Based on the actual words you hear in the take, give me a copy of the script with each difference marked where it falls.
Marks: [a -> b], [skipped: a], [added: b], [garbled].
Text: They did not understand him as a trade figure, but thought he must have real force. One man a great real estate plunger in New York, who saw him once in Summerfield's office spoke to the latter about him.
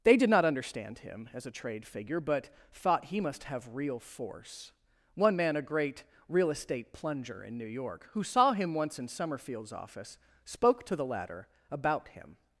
They did not understand him as a trade figure, but thought he must have real force. One man a great real estate plunger in New York, who saw him once in Summerfield's office spoke to the latter about him.